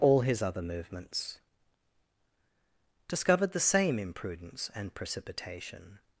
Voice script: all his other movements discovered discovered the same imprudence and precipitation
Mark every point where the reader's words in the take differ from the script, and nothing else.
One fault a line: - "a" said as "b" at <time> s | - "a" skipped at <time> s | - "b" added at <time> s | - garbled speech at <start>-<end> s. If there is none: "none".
- "discovered" skipped at 3.5 s